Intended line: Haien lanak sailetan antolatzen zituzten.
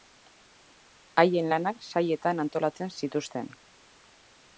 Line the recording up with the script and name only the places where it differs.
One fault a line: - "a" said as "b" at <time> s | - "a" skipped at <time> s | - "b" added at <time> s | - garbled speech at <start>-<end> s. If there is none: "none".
none